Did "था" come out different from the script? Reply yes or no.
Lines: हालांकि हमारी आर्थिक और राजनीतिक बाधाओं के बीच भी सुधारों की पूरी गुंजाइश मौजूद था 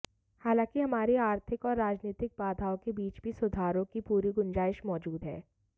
yes